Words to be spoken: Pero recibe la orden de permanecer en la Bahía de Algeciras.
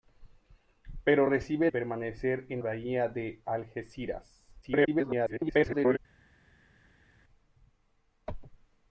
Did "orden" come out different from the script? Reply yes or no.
yes